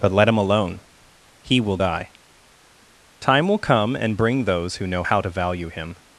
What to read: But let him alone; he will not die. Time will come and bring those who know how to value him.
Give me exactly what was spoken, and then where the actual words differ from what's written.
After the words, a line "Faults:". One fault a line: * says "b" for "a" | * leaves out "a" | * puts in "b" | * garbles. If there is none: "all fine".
But let him alone; he will die. Time will come and bring those who know how to value him.
Faults:
* leaves out "not"